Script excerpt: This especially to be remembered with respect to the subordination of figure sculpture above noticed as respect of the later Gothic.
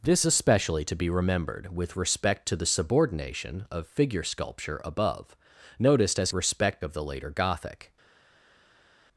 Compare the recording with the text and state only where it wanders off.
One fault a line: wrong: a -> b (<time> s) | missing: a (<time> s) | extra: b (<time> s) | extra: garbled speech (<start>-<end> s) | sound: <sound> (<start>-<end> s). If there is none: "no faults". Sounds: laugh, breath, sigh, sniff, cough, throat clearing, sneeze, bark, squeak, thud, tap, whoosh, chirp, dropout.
no faults